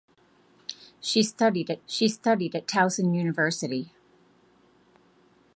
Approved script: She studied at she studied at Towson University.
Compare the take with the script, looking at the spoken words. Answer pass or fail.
pass